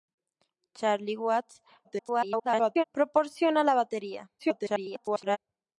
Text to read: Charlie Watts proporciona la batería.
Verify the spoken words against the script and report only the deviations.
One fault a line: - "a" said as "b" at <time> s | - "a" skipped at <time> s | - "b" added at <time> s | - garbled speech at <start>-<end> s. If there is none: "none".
- garbled speech at 1.8-2.8 s
- garbled speech at 4.4-5.4 s